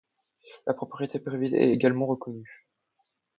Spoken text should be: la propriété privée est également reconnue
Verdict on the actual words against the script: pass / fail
pass